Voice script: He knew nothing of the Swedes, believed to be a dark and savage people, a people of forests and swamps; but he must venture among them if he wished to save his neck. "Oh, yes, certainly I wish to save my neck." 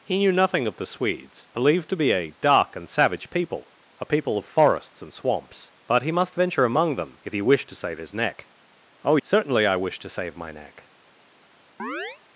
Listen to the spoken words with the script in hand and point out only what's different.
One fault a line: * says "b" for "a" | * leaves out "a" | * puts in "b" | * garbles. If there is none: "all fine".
* leaves out "yes"